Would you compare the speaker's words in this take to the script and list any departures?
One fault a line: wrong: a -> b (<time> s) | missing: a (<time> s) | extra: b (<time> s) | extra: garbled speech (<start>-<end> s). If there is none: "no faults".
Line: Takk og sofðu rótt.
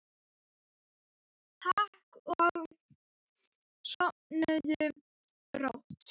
no faults